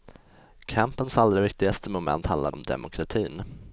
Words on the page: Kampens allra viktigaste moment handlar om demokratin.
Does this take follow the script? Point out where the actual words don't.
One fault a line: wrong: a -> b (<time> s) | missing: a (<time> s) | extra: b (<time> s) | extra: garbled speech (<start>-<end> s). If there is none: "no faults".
no faults